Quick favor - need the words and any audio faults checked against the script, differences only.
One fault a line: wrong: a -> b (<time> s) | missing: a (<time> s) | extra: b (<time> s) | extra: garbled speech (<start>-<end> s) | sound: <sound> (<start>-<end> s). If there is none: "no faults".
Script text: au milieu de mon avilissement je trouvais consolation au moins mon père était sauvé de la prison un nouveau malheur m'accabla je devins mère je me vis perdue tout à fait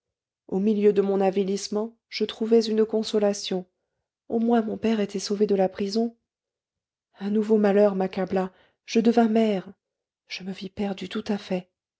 extra: une (2.6 s)